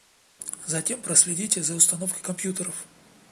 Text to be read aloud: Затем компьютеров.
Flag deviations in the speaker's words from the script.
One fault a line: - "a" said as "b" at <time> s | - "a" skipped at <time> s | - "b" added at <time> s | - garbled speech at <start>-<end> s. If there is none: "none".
- "проследите за установкой" added at 1.0 s